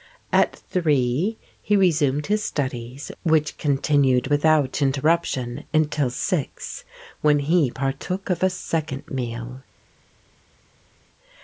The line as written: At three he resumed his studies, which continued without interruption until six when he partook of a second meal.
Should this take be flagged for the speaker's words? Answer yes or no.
no